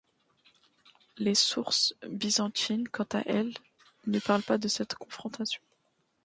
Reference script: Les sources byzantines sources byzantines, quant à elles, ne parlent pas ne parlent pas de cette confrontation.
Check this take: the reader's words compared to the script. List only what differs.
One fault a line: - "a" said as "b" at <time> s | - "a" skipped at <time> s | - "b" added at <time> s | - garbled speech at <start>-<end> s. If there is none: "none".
- "sources byzantines" skipped at 2.9 s
- "ne parlent pas" skipped at 4.6 s